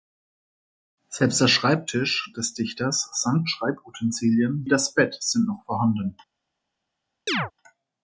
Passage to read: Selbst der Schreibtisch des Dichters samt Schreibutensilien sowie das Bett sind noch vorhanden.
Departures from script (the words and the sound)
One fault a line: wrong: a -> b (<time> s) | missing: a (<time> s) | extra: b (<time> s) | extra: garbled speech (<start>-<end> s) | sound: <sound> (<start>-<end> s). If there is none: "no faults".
missing: sowie (4.7 s)
sound: chirp (7.3-7.5 s)